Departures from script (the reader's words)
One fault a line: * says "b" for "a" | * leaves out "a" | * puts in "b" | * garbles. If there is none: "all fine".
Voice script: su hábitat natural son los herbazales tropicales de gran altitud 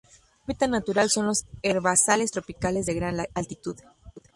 all fine